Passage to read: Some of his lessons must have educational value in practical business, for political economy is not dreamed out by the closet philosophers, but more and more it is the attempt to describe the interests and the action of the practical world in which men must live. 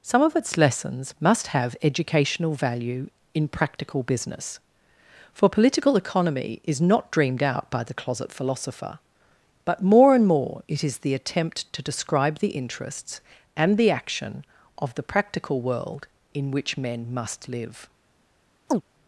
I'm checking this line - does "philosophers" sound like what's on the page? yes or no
no